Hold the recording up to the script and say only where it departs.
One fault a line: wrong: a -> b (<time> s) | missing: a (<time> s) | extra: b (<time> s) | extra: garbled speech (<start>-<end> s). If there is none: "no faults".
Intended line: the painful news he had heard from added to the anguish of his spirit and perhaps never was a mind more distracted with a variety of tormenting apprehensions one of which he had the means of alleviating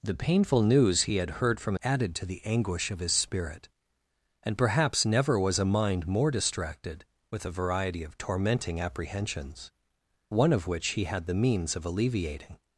no faults